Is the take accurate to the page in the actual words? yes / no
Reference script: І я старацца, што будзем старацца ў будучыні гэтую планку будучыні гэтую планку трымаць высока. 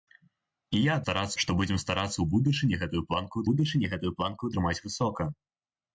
yes